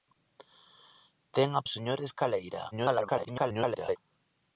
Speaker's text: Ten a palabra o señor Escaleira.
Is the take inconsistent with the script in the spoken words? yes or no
yes